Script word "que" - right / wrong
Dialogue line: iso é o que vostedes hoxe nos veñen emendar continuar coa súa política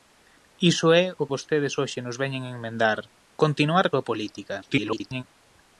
wrong